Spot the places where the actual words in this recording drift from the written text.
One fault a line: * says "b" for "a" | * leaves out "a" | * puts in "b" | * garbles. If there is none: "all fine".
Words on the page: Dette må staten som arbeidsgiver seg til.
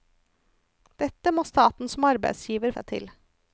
all fine